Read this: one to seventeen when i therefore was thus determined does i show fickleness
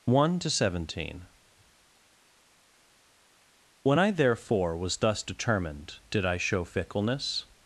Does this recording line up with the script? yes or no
no